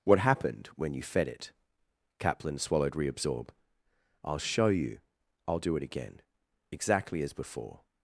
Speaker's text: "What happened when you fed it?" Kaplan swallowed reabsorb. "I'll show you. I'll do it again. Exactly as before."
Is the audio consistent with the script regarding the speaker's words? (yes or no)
yes